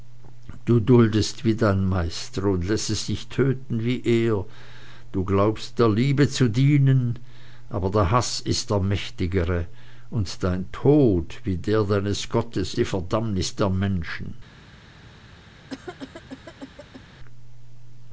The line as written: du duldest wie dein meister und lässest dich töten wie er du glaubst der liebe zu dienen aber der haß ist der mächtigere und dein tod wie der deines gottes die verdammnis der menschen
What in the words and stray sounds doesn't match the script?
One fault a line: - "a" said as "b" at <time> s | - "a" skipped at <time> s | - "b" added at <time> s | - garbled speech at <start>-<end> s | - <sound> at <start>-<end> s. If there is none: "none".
- cough at 15.7-17.0 s